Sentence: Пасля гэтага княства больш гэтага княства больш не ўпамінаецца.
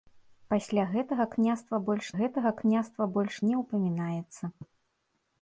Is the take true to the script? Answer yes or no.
yes